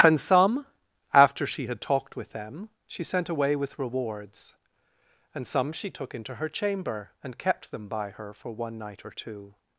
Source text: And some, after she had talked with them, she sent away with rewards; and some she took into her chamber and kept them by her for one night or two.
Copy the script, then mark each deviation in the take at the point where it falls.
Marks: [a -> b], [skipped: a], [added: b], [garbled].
And some, after she had talked with them, she sent away with rewards; and some she took into her chamber and kept them by her for one night or two.